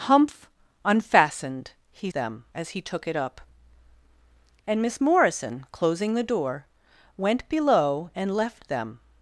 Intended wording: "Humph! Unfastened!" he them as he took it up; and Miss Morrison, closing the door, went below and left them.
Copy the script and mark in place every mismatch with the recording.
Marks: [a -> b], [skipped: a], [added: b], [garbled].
"Humph! Unfastened!" he them as he took it up; and Miss Morrison, closing the door, went below and left them.